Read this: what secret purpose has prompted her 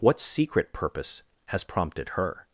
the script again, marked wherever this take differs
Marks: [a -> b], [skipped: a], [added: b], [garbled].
what secret purpose has prompted her